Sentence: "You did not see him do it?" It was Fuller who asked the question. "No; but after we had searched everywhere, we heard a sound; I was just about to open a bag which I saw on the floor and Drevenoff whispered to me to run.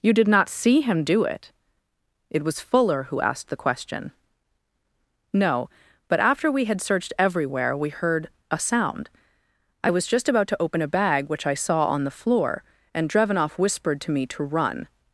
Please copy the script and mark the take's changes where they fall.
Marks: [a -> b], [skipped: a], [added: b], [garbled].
"You did not see him do it?" It was Fuller who asked the question. "No; but after we had searched everywhere, we heard a sound; I was just about to open a bag which I saw on the floor and Drevenoff whispered to me to run.